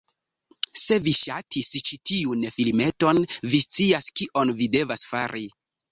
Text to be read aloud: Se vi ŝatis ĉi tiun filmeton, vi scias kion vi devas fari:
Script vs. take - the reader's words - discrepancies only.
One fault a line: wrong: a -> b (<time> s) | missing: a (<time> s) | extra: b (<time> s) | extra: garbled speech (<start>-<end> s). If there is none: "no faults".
no faults